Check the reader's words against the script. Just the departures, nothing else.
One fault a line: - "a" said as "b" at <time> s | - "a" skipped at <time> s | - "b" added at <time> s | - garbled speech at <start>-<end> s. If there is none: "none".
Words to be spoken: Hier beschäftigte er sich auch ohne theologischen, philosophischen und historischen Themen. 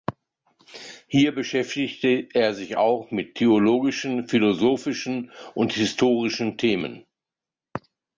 - "ohne" said as "mit" at 3.1 s